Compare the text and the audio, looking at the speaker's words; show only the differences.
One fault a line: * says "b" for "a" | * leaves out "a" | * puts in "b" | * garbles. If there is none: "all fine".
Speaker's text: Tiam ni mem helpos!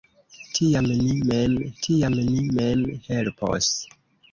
* puts in "tiam ni mem"